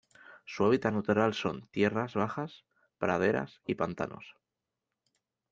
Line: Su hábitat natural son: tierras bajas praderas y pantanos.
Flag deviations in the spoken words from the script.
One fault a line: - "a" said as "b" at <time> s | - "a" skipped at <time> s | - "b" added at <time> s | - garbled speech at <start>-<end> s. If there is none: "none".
none